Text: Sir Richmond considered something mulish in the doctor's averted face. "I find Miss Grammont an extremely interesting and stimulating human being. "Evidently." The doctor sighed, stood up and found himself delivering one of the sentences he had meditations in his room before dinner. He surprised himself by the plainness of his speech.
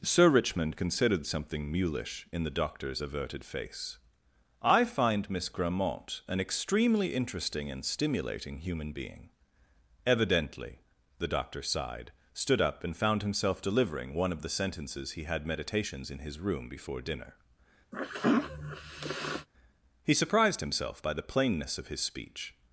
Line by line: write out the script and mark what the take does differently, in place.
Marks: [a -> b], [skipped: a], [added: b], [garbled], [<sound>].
Sir Richmond considered something mulish in the doctor's averted face. "I find Miss Grammont an extremely interesting and stimulating human being. "Evidently." The doctor sighed, stood up and found himself delivering one of the sentences he had meditations in his room before dinner. [sneeze] He surprised himself by the plainness of his speech.